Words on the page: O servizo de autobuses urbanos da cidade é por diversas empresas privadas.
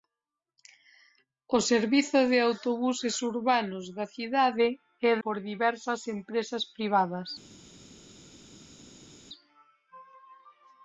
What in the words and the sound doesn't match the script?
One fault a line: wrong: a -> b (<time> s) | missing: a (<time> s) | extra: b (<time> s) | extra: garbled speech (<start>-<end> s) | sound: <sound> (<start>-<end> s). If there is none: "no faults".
no faults